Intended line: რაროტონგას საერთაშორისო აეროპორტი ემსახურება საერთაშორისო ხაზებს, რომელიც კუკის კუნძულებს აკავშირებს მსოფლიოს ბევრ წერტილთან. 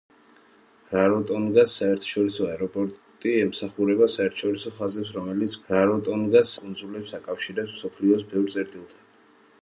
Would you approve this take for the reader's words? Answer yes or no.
no